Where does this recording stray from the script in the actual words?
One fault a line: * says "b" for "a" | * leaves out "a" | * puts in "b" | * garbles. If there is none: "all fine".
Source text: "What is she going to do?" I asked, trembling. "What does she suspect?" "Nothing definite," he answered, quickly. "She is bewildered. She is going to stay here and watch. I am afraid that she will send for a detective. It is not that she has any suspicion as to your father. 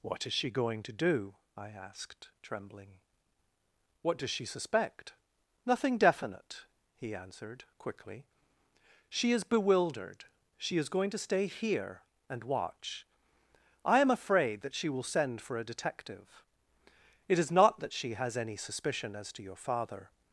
all fine